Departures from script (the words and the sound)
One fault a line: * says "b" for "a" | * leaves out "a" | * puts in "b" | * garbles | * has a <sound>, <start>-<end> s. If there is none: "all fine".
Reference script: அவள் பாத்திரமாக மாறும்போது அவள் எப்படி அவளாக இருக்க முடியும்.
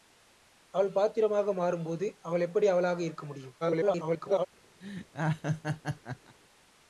* garbles
* has a laugh, 4.8-6.4 s